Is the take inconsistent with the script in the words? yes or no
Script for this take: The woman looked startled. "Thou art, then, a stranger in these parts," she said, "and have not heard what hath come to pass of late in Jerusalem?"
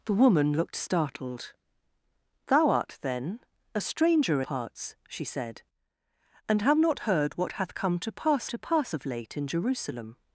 yes